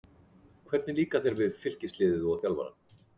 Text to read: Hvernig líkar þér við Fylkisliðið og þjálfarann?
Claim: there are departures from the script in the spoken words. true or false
false